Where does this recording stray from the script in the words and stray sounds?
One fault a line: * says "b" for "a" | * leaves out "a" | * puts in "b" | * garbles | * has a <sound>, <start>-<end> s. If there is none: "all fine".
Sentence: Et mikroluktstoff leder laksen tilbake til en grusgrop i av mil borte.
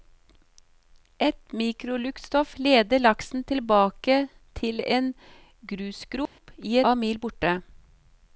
* has a dropout, 6.3-6.4 s